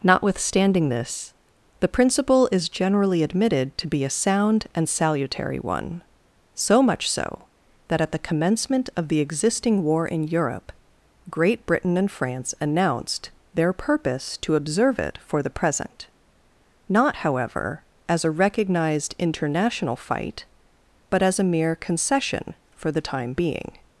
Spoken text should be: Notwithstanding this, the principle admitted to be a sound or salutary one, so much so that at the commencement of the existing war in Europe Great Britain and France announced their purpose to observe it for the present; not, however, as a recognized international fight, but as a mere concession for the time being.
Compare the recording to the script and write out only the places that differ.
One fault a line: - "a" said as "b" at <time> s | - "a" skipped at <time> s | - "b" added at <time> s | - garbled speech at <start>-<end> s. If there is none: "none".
- "is generally" added at 2.5 s
- "or" said as "and" at 4.7 s